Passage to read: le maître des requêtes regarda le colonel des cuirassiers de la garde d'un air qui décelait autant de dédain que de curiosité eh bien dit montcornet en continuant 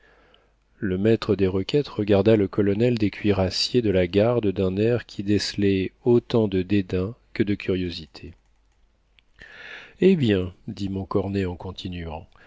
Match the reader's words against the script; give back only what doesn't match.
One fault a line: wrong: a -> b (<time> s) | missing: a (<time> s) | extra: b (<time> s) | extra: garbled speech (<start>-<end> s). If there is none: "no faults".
no faults